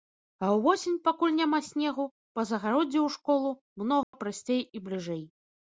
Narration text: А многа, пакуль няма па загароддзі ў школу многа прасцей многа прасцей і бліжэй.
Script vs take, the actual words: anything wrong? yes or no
yes